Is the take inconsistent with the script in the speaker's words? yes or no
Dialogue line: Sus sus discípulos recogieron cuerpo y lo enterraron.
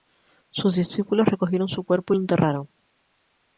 yes